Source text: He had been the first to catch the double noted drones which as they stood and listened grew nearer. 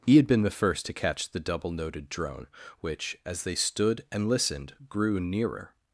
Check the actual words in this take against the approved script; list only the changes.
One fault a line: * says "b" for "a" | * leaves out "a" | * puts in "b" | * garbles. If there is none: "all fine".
* says "drone" for "drones"